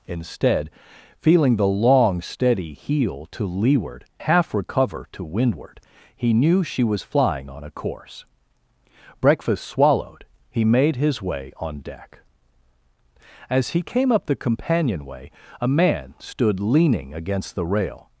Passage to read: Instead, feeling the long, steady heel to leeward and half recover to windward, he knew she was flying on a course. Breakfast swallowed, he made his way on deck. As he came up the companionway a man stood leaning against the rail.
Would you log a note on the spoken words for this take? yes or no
yes